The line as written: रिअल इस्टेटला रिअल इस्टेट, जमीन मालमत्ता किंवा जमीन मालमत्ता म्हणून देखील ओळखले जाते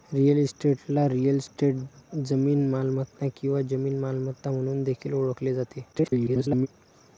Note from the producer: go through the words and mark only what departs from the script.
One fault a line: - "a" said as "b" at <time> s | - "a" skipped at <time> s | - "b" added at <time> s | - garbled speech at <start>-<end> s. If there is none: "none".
- garbled speech at 5.9-6.7 s